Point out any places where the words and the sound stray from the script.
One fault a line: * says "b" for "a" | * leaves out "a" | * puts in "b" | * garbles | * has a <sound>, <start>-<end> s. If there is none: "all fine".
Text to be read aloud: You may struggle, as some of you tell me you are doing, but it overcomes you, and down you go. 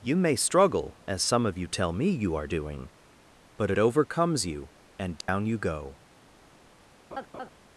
* has a dropout, 5.2-5.3 s
* has a laugh, 7.1-7.5 s